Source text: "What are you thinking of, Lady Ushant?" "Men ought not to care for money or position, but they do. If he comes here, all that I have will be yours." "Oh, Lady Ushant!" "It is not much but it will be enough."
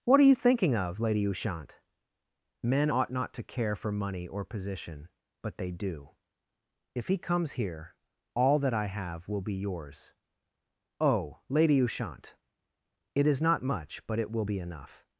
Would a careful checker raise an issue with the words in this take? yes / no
no